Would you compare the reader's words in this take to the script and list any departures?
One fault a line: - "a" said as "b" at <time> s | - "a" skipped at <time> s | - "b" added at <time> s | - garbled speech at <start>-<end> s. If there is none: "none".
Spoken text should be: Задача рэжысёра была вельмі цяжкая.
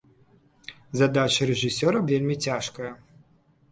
- "была" skipped at 2.0 s